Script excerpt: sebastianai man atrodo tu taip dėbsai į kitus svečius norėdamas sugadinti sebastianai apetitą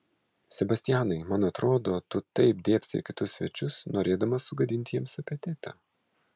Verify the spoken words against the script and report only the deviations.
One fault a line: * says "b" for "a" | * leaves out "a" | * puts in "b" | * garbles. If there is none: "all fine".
* says "jiems" for "sebastianai"